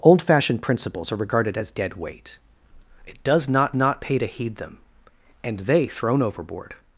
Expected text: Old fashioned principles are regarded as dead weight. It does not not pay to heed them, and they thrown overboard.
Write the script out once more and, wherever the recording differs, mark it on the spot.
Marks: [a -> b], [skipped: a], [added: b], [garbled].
Old fashioned principles are regarded as dead weight. It does not not pay to heed them, and they thrown overboard.